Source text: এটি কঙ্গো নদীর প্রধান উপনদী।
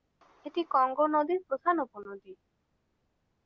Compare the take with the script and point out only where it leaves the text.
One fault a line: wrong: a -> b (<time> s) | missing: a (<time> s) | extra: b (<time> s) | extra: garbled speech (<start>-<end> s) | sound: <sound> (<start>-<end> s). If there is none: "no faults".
no faults